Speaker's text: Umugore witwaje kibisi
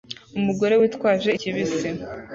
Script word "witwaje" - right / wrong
right